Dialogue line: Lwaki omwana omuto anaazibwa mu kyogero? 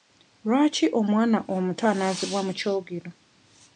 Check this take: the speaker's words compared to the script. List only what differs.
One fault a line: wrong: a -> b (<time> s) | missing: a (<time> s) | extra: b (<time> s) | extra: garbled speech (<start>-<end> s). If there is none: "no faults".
no faults